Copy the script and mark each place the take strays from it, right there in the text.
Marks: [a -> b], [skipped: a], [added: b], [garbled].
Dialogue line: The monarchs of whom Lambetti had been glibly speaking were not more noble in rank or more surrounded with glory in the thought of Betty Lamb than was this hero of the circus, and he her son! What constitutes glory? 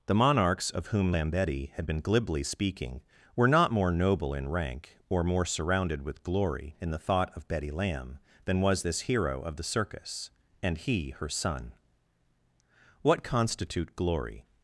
The monarchs of whom Lambetti had been glibly speaking were not more noble in rank or more surrounded with glory in the thought of Betty Lamb than was this hero of the circus, and he her son! What [constitutes -> constitute] glory?